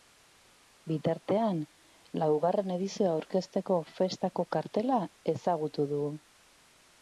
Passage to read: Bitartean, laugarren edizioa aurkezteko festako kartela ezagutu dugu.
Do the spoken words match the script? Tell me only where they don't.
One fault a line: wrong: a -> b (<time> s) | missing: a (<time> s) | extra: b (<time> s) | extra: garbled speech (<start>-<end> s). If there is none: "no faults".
no faults